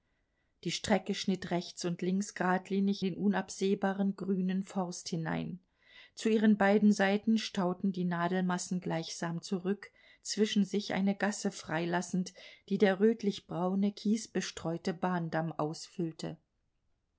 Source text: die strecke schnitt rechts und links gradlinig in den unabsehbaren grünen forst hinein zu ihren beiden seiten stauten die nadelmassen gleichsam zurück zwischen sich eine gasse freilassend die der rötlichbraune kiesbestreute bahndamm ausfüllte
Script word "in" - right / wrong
wrong